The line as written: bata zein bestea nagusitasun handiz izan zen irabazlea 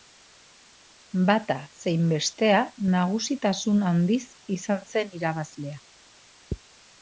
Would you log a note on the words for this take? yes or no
no